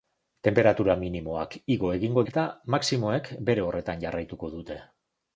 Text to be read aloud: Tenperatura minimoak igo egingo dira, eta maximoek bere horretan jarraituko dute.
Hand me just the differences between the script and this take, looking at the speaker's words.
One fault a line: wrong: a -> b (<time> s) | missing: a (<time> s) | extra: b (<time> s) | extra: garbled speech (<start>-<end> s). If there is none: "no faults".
missing: dira (2.2 s)